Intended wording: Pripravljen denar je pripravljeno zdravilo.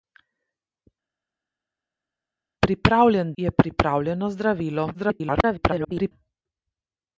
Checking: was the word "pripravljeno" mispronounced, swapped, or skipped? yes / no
no